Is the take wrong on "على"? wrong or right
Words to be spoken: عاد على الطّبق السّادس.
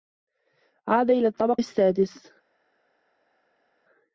wrong